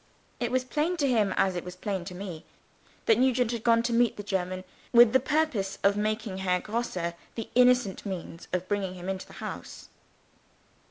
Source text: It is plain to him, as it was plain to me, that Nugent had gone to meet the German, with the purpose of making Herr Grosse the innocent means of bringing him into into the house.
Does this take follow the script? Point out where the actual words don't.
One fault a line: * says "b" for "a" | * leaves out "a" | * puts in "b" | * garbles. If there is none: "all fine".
* says "was" for "is"
* leaves out "into"